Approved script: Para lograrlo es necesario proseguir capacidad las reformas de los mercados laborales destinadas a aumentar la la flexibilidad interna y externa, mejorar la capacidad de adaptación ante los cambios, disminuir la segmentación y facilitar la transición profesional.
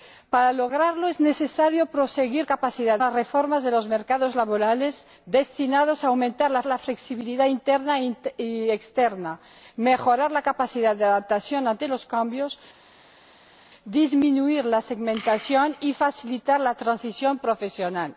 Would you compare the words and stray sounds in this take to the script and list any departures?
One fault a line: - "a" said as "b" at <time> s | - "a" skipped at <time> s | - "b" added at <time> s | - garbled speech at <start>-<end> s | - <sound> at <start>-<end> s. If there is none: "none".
none